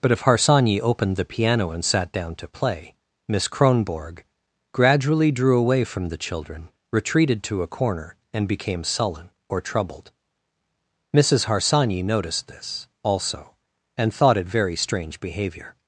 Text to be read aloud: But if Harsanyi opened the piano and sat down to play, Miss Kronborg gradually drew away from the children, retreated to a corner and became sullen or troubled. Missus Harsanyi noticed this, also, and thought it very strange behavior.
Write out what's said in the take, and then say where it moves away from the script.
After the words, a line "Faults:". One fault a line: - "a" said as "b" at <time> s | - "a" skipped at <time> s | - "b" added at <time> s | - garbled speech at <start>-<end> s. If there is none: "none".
But if Harsanyi opened the piano and sat down to play, Miss Kronborg gradually drew away from the children, retreated to a corner and became sullen or troubled. Missus Harsanyi noticed this, also, and thought it very strange behavior.
Faults:
none